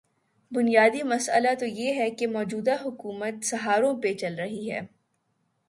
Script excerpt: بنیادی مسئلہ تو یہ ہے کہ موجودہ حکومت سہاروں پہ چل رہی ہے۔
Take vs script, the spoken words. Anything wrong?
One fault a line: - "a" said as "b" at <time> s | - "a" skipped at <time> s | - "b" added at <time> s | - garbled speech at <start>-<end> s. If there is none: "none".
none